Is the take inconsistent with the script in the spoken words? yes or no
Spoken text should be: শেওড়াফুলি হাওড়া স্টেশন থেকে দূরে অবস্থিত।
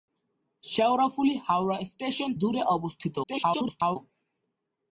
yes